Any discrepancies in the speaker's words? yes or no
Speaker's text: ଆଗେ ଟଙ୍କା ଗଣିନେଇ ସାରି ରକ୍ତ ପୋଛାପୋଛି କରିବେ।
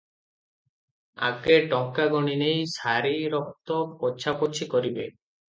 no